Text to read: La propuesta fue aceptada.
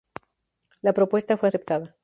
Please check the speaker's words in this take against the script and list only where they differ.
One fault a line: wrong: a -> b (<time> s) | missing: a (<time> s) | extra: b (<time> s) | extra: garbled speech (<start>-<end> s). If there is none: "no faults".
no faults